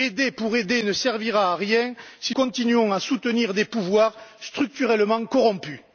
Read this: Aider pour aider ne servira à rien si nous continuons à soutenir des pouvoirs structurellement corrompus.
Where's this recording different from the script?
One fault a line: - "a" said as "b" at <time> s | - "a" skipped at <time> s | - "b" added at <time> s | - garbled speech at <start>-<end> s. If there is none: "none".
- "nous" skipped at 2.3 s